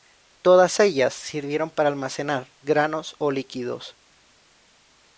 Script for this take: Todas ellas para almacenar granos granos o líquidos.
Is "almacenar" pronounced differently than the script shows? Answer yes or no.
no